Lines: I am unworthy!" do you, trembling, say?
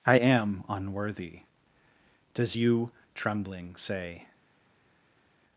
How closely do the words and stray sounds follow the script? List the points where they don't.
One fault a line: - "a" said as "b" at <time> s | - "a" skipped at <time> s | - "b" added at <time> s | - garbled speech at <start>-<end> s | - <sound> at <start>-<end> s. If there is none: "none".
- "do" said as "does" at 2.3 s